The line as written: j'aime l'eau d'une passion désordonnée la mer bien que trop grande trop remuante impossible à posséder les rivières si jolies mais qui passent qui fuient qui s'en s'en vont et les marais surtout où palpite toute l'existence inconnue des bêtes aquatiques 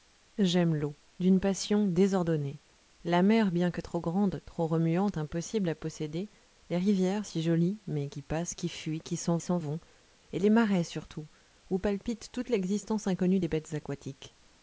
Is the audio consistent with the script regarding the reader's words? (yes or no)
yes